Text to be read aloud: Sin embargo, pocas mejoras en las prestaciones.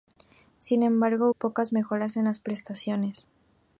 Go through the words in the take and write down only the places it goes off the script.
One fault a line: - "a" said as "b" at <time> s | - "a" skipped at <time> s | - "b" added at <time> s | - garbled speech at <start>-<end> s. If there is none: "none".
none